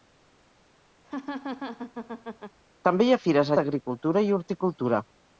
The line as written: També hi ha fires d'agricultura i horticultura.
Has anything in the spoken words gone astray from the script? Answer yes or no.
no